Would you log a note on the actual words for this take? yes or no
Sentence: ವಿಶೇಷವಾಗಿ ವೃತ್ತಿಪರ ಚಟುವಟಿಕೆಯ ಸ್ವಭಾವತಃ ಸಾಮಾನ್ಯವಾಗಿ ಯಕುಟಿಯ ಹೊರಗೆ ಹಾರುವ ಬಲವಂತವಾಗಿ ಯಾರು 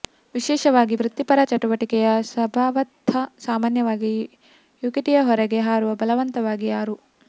no